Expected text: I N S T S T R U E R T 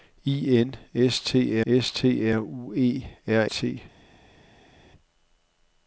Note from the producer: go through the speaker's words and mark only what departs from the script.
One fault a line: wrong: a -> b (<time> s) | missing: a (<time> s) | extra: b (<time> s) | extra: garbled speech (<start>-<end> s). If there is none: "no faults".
no faults